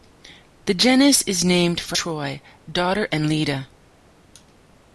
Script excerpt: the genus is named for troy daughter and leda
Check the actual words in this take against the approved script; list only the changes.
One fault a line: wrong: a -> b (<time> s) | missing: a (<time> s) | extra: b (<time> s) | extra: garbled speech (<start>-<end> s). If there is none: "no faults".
no faults